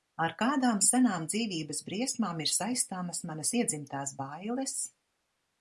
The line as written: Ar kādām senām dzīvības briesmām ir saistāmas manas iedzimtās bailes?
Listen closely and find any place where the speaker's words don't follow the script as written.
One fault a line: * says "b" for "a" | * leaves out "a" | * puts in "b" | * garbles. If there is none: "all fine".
all fine